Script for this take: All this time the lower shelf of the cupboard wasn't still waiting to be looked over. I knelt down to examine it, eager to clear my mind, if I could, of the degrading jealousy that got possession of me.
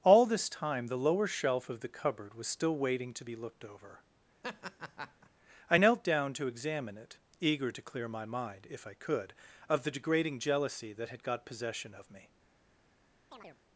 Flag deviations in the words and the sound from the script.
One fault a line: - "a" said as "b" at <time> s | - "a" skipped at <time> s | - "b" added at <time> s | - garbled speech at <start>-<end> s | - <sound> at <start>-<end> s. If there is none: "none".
- "wasn't" said as "was" at 2.3 s
- laugh at 4.4-5.3 s
- "had" added at 11.1 s
- chirp at 13.3-13.6 s